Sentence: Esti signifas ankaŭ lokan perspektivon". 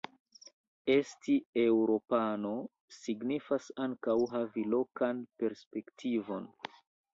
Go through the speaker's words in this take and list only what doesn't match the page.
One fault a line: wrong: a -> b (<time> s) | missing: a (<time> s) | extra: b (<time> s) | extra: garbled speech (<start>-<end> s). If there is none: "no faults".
extra: eŭropano (1.6 s)
extra: havi (4.3 s)